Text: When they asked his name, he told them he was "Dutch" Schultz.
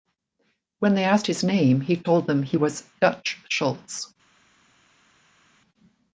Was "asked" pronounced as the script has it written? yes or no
yes